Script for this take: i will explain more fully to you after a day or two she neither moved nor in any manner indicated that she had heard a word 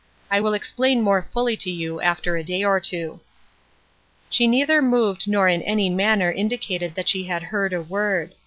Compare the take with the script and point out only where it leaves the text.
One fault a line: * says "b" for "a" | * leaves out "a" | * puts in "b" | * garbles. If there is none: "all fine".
all fine